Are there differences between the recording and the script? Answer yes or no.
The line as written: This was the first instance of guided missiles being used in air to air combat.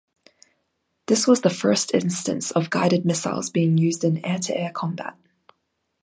no